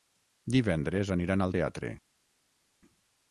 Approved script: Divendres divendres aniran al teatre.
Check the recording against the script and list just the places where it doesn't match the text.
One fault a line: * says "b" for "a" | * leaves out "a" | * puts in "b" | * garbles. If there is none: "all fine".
* leaves out "divendres"